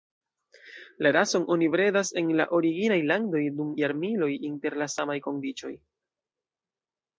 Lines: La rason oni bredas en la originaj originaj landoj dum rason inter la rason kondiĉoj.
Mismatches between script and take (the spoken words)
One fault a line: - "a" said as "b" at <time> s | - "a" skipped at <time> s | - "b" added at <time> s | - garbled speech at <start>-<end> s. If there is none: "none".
- "originaj" skipped at 3.0 s
- "rason" said as "jarmiloj" at 3.8 s
- "rason" said as "samaj" at 5.0 s